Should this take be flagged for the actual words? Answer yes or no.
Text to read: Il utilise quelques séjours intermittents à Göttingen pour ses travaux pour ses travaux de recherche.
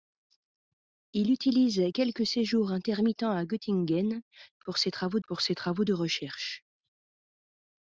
no